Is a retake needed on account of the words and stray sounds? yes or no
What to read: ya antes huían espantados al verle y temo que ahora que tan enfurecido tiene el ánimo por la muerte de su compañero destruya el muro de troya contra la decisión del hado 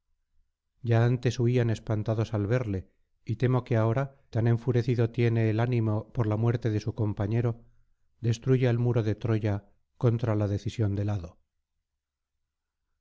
yes